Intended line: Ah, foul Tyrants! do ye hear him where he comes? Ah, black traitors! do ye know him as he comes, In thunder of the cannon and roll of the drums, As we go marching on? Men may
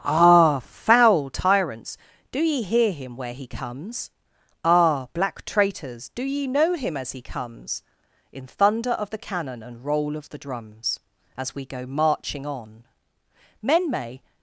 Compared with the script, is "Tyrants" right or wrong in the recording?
right